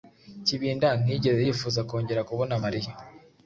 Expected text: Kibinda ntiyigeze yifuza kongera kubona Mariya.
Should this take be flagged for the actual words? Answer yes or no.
no